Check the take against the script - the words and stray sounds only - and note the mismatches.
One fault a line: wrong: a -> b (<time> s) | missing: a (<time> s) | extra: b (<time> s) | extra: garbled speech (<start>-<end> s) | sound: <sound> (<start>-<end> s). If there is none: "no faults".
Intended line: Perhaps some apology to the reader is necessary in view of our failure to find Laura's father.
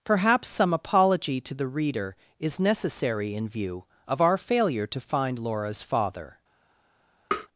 sound: tap (7.3-7.5 s)